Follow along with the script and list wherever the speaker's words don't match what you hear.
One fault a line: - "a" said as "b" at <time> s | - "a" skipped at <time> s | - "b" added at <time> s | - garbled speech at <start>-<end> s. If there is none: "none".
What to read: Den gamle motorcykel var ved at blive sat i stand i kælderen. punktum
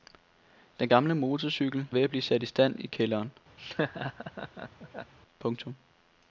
- "var" skipped at 1.9 s